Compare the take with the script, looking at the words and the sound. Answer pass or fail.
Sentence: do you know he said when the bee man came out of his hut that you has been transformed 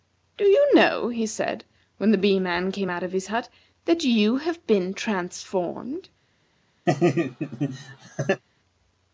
fail